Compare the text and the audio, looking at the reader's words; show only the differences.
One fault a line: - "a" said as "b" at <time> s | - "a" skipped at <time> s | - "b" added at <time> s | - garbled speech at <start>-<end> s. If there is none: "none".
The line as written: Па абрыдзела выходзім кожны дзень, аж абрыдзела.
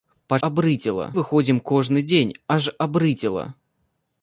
none